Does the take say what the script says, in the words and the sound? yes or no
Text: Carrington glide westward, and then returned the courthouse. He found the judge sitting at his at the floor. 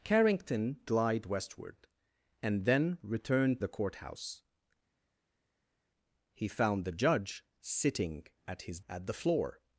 yes